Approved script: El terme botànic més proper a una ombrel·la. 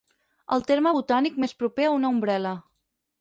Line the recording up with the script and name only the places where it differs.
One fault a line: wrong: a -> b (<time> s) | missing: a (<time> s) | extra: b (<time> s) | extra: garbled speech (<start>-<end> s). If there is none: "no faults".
no faults